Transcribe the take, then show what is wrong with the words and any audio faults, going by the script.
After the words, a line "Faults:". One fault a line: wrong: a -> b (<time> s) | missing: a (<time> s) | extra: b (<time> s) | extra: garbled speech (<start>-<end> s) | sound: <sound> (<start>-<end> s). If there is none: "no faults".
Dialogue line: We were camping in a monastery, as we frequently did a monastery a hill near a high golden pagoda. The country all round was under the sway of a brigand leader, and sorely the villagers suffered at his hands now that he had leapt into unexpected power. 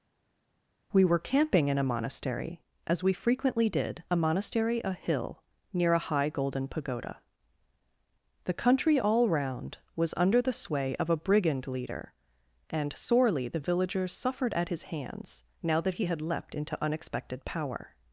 We were camping in a monastery, as we frequently did a monastery a hill near a high golden pagoda. The country all round was under the sway of a brigand leader, and sorely the villagers suffered at his hands now that he had leapt into unexpected power.
Faults:
no faults